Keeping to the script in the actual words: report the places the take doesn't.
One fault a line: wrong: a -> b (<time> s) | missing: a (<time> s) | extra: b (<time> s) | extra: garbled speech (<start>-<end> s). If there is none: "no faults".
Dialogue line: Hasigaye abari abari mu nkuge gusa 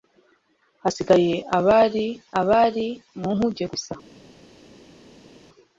no faults